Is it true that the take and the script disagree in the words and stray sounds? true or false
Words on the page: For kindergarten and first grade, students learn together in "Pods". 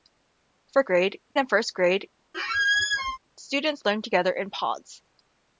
true